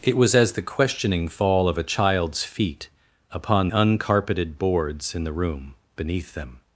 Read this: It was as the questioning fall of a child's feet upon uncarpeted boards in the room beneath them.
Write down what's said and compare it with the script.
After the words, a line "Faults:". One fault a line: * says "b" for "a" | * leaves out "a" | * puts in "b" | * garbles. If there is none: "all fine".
It was as the questioning fall of a child's feet upon uncarpeted boards in the room beneath them.
Faults:
all fine